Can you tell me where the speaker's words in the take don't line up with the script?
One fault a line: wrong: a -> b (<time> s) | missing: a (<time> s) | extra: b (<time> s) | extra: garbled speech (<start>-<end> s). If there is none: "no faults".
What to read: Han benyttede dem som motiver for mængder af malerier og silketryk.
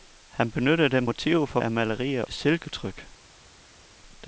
missing: som (1.1 s)
missing: mængder (1.6 s)
missing: og (2.2 s)